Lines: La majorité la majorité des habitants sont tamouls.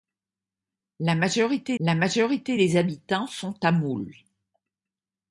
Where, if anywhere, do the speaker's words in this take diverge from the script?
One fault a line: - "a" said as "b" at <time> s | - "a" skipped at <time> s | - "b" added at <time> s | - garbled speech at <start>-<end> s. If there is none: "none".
none